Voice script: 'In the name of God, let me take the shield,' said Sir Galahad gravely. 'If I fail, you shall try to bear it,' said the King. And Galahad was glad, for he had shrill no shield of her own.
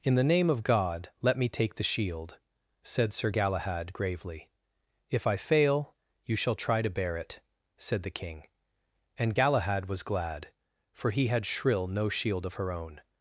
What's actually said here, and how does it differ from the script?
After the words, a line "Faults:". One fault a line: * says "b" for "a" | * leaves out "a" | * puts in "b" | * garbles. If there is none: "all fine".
'In the name of God, let me take the shield,' said Sir Galahad gravely. 'If I fail, you shall try to bear it,' said the King. And Galahad was glad, for he had shrill no shield of her own.
Faults:
all fine